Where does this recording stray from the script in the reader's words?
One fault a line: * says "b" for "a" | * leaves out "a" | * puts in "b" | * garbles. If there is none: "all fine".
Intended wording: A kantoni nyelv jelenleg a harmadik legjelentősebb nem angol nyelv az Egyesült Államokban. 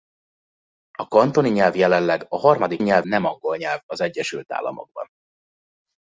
* says "nyelv" for "legjelentősebb"